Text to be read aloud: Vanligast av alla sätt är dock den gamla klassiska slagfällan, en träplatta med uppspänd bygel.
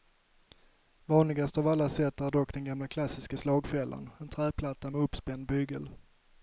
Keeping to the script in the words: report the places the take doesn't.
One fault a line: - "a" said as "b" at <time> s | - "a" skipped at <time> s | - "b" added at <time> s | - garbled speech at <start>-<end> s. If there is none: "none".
none